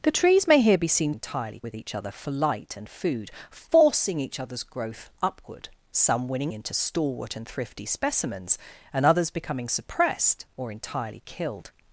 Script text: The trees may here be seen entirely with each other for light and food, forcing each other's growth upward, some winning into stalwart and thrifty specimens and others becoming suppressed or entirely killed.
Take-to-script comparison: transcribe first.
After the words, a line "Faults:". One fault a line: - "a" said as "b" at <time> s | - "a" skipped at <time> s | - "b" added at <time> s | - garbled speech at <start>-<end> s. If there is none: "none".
The trees may here be seen entirely with each other for light and food, forcing each other's growth upward, some winning into stalwart and thrifty specimens and others becoming suppressed or entirely killed.
Faults:
none